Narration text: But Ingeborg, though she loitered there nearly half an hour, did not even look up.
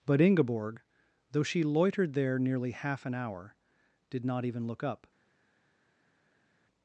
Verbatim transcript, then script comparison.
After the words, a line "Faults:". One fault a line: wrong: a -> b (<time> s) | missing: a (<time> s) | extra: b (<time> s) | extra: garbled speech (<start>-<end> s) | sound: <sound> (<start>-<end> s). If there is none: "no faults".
But Ingeborg, though she loitered there nearly half an hour, did not even look up.
Faults:
no faults